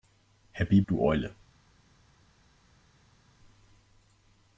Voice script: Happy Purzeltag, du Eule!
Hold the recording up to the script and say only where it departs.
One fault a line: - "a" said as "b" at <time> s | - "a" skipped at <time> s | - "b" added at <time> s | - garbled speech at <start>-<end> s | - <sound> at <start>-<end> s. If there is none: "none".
- "Purzeltag" skipped at 0.8 s